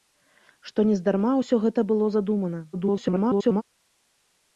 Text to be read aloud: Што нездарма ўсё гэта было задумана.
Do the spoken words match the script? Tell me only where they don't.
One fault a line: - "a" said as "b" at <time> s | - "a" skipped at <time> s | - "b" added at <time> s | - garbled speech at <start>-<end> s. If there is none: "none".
- garbled speech at 2.7-3.6 s